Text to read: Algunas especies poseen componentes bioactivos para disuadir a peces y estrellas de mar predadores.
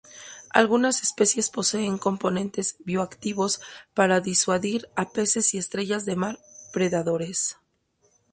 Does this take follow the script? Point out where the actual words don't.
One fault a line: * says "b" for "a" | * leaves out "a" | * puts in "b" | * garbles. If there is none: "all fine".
all fine